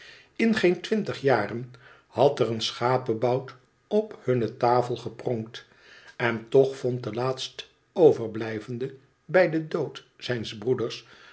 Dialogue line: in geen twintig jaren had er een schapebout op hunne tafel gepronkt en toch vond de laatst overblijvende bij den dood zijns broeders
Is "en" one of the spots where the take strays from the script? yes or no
no